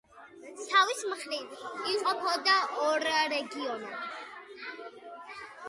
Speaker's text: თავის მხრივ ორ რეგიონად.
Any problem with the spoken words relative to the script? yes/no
yes